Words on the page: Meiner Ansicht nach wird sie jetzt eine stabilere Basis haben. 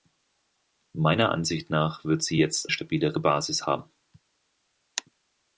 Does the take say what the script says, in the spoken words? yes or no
no